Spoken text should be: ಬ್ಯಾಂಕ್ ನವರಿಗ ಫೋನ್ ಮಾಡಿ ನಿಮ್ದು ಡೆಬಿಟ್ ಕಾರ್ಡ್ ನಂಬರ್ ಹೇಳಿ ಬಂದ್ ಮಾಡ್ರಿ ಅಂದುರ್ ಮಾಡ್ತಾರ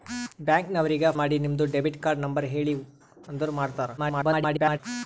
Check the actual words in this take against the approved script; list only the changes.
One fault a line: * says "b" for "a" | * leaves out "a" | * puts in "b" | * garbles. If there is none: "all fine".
* leaves out "ಫೋನ್"
* leaves out "ಬಂದ್ ಮಾಡ್ರಿ"
* garbles